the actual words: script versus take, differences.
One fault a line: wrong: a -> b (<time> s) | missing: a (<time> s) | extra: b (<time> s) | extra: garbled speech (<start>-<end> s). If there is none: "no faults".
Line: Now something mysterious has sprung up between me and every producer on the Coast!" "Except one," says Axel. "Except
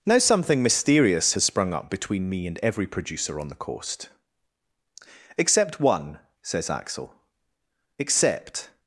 no faults